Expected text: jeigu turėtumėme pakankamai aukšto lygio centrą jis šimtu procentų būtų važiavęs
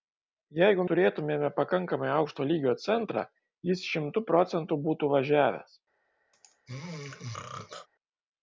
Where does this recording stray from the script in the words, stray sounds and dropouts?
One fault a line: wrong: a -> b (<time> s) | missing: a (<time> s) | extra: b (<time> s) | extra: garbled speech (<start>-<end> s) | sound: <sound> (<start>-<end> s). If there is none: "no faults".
sound: throat clearing (6.3-7.9 s)